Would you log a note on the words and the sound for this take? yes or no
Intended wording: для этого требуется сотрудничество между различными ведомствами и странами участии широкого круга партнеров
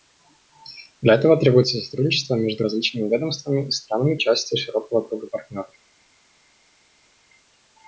no